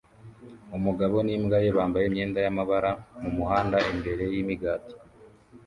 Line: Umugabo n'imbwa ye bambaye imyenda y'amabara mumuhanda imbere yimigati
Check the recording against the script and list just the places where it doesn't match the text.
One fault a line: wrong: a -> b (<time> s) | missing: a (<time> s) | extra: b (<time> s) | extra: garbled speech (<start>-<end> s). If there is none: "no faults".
no faults